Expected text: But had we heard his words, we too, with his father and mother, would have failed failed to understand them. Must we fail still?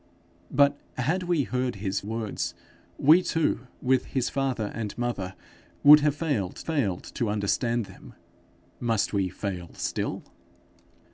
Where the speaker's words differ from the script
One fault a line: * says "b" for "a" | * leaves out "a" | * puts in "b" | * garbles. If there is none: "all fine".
all fine